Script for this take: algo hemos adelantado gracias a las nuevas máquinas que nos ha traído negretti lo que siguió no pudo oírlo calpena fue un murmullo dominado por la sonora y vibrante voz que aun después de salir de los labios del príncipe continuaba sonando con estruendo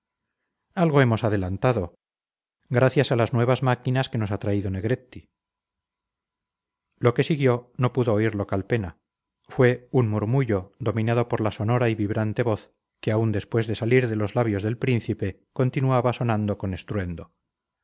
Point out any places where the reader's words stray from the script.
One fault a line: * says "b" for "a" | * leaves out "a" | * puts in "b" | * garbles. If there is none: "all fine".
all fine